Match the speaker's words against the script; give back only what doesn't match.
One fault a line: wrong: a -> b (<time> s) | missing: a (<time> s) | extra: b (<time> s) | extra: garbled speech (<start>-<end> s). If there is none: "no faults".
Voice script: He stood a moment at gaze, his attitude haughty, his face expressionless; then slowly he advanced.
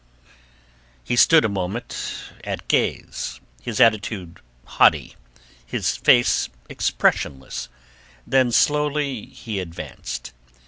no faults